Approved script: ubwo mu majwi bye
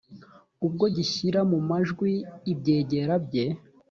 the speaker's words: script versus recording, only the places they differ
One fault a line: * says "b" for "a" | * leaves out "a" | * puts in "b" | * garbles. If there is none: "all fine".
* puts in "gishyira"
* puts in "ibyegera"